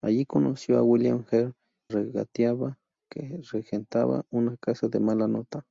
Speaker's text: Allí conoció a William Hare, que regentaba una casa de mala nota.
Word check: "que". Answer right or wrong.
wrong